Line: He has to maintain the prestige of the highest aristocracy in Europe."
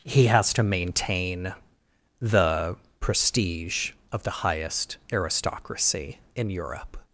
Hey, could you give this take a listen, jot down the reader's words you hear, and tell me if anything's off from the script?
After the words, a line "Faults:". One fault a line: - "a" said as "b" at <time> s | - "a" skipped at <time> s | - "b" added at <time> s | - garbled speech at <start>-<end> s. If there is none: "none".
He has to maintain the prestige of the highest aristocracy in Europe."
Faults:
none